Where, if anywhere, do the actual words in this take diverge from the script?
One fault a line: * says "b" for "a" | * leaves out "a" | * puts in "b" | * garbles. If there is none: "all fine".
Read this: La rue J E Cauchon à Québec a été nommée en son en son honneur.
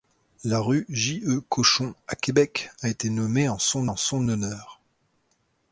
all fine